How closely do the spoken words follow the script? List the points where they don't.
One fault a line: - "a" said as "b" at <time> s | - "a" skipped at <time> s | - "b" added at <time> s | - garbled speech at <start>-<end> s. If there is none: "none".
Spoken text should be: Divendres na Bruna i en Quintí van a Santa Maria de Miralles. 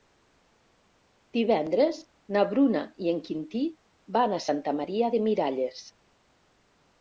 none